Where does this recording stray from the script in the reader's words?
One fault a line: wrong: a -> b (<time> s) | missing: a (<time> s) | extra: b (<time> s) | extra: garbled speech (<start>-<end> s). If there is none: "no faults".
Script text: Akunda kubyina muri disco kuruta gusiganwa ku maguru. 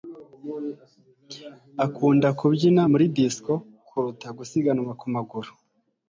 no faults